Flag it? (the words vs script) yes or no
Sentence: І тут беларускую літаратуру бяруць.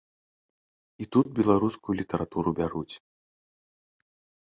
no